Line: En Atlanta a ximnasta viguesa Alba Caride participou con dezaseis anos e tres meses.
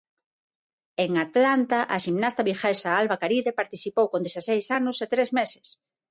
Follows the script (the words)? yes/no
yes